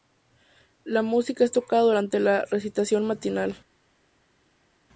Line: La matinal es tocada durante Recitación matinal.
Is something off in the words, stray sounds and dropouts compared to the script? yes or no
yes